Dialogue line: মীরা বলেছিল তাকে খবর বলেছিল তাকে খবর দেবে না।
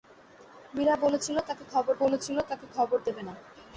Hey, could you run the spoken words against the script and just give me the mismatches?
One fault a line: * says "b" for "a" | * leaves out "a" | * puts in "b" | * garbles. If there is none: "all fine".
all fine